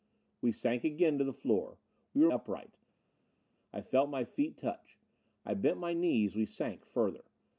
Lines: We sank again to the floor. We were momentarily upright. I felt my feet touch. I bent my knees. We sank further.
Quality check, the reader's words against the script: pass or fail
fail